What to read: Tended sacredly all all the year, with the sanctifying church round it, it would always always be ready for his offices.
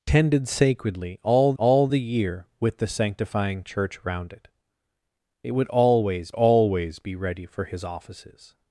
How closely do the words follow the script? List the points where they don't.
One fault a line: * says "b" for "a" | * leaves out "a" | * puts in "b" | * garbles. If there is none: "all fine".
all fine